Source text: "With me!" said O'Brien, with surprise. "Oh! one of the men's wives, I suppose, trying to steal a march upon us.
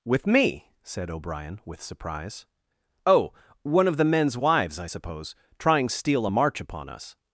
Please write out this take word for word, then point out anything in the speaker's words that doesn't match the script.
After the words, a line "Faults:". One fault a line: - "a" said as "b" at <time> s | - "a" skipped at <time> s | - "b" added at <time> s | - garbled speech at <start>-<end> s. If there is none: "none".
"With me!" said O'Brien, with surprise. "Oh! one of the men's wives, I suppose, trying steal a march upon us.
Faults:
- "to" skipped at 5.9 s